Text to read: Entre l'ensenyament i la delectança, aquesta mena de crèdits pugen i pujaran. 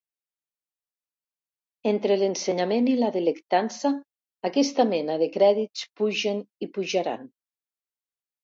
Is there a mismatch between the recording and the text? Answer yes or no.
no